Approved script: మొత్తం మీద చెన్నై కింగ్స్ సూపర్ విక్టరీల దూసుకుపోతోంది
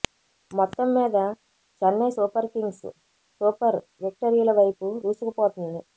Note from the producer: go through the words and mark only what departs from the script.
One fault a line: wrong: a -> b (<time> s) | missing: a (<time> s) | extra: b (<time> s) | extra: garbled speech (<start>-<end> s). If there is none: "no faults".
extra: సూపర్ (2.1 s)
extra: వైపు (4.6 s)